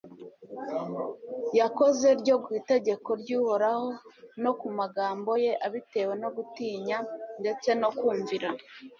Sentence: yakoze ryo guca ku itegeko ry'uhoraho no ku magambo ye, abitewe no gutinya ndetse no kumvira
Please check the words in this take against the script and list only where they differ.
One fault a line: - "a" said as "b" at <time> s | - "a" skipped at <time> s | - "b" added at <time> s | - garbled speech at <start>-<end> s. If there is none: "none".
- "guca" skipped at 2.4 s